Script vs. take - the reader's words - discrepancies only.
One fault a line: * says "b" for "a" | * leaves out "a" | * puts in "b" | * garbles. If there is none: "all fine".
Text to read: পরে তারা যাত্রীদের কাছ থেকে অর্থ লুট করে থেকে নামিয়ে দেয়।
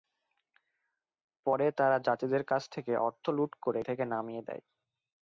all fine